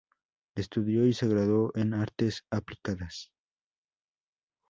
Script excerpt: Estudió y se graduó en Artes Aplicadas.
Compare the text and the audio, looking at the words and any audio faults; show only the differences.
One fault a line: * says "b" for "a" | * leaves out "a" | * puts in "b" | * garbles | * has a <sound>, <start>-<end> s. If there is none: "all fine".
all fine